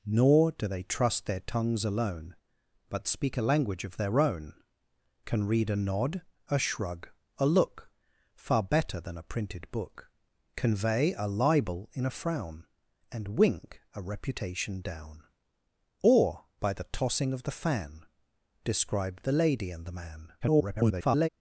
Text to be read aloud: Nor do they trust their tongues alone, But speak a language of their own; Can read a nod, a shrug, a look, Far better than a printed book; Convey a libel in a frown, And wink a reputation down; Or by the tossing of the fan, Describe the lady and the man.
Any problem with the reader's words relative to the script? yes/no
yes